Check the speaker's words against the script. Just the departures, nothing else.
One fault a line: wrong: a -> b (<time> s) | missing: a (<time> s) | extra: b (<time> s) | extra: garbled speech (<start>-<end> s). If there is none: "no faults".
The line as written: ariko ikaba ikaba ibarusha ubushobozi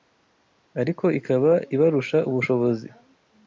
missing: ikaba (1.5 s)